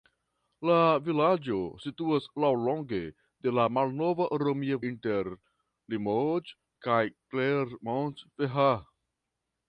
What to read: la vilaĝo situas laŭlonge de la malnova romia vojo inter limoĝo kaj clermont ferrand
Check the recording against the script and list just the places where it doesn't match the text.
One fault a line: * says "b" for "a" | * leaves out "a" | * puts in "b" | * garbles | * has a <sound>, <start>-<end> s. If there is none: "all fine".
* leaves out "vojo"